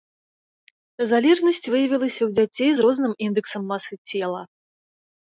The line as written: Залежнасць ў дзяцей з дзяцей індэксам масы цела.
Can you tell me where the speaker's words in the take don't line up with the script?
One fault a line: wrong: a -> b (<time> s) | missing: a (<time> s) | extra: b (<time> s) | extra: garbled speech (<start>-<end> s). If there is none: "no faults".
extra: выявілася (1.7 s)
wrong: дзяцей -> розным (2.8 s)